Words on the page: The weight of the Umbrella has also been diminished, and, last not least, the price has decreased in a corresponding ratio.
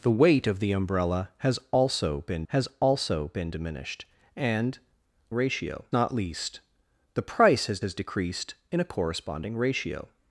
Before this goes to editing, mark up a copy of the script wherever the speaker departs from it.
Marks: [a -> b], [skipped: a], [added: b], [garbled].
The weight of the Umbrella has also been [added: has also been] diminished, and, [last -> ratio] not least, the price has [added: has] decreased in a corresponding ratio.